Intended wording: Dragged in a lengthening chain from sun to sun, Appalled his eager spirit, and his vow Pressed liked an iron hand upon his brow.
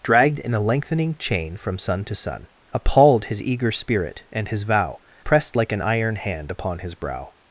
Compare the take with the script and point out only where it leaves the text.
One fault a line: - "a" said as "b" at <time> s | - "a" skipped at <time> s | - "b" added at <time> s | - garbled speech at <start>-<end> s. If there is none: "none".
- "liked" said as "like" at 5.5 s